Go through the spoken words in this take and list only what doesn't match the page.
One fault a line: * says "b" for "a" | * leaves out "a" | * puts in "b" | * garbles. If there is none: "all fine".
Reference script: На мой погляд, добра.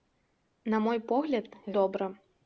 all fine